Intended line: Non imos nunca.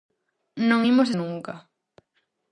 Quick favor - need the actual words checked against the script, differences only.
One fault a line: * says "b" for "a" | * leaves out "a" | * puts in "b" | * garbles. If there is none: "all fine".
all fine